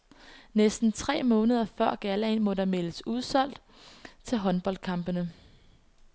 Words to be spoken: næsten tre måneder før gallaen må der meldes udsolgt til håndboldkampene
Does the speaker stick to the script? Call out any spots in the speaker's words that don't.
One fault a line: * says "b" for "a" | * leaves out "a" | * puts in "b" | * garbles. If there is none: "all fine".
all fine